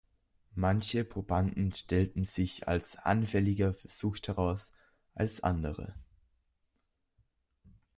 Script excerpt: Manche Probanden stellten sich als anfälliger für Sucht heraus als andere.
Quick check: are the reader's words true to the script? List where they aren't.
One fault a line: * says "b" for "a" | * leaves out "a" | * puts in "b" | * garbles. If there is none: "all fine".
all fine